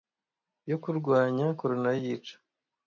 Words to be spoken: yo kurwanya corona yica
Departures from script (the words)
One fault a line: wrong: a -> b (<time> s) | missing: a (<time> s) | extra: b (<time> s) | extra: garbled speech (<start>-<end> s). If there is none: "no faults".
no faults